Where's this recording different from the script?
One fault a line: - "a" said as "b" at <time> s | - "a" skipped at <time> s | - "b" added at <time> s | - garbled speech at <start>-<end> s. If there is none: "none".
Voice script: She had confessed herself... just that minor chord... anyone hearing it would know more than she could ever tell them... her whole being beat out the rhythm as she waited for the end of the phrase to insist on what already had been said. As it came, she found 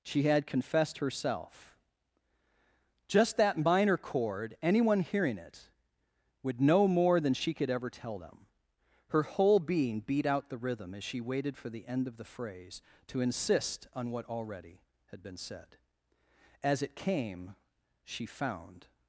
none